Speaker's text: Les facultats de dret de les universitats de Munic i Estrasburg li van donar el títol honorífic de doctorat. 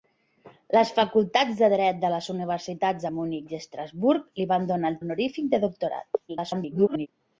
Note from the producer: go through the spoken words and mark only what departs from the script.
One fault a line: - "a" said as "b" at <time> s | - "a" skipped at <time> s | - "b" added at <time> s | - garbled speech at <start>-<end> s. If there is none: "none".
- "títol" skipped at 5.0 s
- garbled speech at 6.3-7.1 s